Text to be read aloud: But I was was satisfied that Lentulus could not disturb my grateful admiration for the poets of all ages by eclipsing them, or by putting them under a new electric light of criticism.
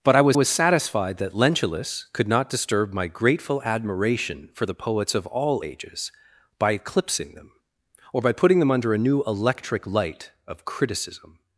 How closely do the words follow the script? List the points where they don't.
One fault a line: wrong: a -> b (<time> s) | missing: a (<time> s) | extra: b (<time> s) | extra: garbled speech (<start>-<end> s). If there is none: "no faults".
no faults